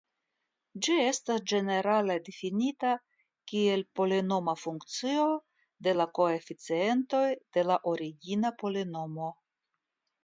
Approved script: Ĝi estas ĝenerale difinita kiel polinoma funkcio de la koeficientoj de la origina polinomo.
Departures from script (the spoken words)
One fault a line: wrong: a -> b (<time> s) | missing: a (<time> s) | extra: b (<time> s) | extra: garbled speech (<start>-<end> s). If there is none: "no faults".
no faults